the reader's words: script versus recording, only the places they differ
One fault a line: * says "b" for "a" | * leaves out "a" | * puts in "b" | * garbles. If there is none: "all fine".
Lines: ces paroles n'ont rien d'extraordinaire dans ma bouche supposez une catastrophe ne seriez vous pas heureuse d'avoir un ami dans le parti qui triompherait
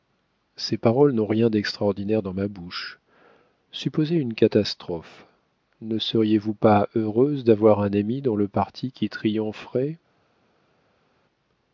all fine